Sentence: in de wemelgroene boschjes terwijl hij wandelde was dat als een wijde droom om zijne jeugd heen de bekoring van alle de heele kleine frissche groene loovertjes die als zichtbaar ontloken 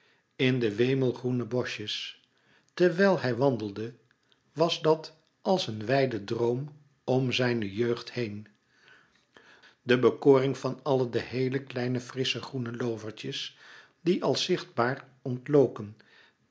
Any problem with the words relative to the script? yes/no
no